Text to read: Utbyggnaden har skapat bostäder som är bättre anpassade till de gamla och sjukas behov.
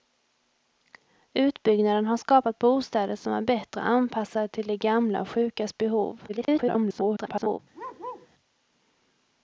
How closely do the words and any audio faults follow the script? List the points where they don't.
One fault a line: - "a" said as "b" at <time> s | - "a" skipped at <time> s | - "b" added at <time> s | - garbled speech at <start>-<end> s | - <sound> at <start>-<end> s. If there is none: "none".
- garbled speech at 6.3-7.6 s
- bark at 7.7-8.3 s